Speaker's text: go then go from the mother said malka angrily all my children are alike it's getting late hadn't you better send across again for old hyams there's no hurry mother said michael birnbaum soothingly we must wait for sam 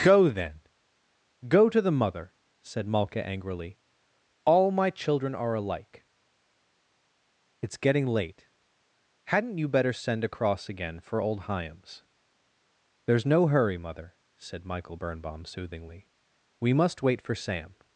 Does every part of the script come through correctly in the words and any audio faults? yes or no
no